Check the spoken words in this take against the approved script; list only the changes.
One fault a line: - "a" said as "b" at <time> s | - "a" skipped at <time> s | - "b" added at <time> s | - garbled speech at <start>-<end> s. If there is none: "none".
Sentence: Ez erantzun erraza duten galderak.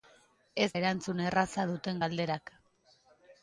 none